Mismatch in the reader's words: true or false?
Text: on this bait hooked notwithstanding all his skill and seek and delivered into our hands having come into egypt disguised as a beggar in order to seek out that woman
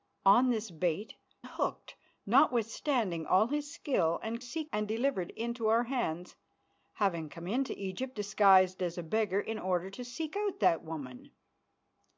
false